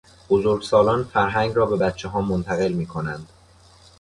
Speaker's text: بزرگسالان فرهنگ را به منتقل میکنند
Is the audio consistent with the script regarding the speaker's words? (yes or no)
no